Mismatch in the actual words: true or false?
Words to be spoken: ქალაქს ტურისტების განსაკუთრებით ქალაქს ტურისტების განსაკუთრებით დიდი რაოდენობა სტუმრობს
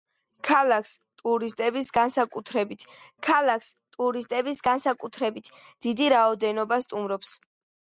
false